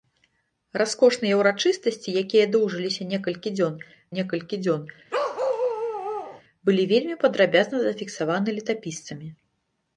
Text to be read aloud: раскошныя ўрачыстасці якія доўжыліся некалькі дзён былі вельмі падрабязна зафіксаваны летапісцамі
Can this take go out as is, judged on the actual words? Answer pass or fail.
fail